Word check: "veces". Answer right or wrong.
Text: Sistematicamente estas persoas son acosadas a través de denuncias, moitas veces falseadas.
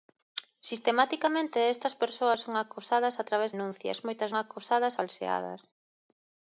wrong